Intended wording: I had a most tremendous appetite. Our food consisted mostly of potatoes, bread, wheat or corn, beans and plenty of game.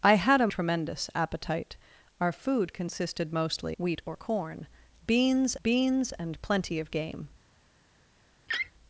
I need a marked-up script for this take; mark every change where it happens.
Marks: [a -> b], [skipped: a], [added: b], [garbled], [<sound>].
I had a [skipped: most] tremendous appetite. Our food consisted mostly [skipped: of potatoes, bread,] wheat or corn, beans [added: beans] and plenty of game. [laugh]